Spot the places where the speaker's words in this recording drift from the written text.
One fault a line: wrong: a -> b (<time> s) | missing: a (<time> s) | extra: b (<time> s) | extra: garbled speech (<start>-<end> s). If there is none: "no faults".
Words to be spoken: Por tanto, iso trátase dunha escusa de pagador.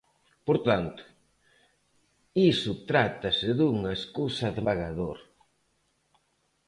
no faults